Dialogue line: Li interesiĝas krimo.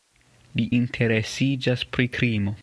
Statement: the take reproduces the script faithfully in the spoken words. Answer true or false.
false